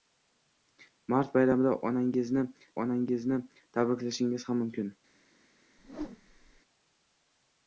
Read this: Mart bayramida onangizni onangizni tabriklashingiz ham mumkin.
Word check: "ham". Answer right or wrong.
right